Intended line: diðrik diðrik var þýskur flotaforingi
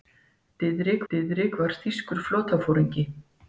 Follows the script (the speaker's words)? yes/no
yes